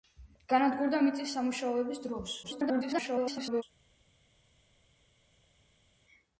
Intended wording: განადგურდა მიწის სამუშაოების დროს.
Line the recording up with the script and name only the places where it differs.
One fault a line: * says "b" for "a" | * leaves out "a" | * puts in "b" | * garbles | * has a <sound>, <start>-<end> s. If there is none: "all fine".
* garbles